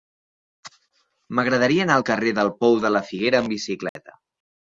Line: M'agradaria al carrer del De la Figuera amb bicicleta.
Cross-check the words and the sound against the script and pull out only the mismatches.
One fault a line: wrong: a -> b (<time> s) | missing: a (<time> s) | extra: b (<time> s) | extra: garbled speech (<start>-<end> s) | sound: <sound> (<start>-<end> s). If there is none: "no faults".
extra: anar (1.9 s)
extra: Pou (2.6 s)
sound: dropout (3.9-4.0 s)